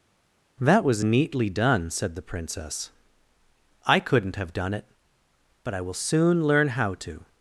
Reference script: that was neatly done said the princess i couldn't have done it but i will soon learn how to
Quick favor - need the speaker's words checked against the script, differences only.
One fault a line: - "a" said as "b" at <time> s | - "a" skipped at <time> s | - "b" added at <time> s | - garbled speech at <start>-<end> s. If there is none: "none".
none